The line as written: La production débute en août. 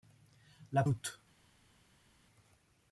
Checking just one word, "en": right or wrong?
wrong